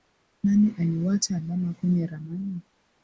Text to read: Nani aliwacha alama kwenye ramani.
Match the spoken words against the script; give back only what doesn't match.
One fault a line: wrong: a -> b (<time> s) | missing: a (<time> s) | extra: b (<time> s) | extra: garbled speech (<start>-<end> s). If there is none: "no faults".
no faults